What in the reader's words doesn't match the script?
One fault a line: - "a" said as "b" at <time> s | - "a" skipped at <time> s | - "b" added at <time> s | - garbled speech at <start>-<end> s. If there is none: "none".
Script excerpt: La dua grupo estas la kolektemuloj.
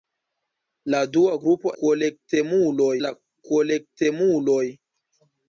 - "estas" said as "kolektemuloj" at 1.8 s